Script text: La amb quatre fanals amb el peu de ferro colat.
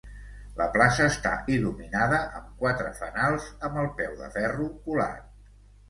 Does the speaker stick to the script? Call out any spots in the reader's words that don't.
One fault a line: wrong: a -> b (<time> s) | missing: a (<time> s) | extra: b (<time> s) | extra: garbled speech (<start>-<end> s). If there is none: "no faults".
extra: plaça està il·luminada (0.8 s)